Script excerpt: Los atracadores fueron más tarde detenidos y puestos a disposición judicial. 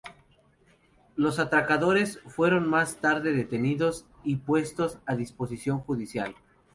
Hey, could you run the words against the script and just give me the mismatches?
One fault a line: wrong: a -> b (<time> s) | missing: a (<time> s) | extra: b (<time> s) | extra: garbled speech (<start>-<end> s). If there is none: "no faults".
no faults